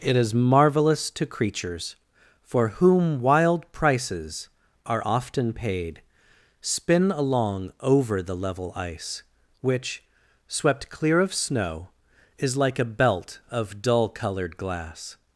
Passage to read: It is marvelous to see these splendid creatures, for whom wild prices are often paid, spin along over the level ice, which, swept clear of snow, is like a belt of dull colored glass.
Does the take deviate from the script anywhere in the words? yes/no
yes